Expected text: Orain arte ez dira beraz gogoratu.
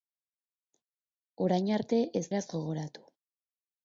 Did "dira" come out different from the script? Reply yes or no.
yes